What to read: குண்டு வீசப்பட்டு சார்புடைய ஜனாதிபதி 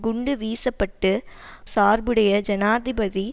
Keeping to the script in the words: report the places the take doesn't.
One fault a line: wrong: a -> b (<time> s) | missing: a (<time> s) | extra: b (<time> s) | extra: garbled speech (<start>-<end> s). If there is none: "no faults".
no faults